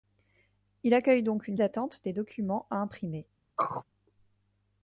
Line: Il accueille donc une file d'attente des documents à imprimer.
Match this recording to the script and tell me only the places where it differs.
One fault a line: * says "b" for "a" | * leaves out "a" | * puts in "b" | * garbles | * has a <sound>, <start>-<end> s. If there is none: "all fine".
* leaves out "file"
* has a throat clearing, 3.6-3.8 s